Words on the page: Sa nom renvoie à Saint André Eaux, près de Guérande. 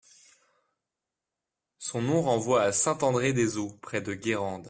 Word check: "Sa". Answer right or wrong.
wrong